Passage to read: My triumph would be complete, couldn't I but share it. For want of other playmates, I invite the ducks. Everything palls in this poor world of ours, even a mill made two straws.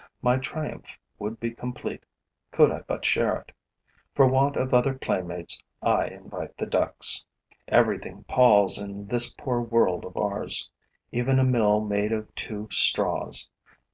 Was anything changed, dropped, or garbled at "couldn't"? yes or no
yes